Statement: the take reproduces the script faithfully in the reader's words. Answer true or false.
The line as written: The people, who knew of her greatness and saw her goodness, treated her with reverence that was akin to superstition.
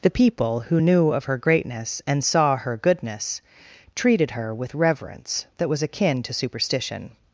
true